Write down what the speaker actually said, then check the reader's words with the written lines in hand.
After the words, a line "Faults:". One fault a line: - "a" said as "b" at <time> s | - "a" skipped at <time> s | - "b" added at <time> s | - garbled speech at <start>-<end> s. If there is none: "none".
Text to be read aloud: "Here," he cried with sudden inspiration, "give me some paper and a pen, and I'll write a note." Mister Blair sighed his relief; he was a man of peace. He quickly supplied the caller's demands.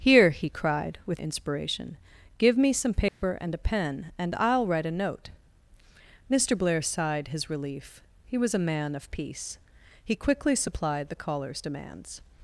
"Here," he cried with inspiration, "give me some paper and a pen, and I'll write a note." Mister Blair sighed his relief; he was a man of peace. He quickly supplied the caller's demands.
Faults:
- "sudden" skipped at 1.2 s